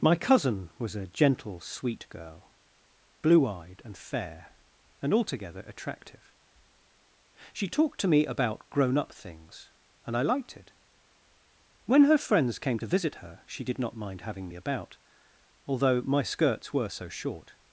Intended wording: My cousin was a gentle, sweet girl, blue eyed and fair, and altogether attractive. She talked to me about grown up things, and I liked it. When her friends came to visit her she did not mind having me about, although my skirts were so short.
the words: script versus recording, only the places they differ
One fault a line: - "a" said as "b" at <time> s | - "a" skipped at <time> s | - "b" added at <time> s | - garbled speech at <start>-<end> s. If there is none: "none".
none